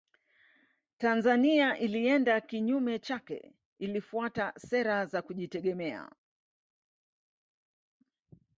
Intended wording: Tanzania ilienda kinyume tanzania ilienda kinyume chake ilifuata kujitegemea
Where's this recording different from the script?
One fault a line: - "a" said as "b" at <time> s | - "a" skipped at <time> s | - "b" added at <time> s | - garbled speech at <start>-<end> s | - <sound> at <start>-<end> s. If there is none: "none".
- "tanzania ilienda kinyume chake ilifuata" said as "chake ilifuata sera za" at 3.0 s